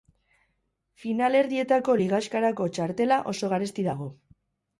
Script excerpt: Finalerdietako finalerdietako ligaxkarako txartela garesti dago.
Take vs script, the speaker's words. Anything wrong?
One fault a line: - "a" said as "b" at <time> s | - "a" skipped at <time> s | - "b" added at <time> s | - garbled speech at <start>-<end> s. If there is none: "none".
- "finalerdietako" skipped at 2.0 s
- "oso" added at 3.3 s